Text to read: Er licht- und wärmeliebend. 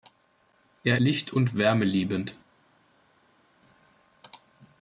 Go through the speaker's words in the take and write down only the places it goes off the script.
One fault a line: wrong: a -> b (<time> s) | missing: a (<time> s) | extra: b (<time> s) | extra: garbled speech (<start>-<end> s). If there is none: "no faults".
no faults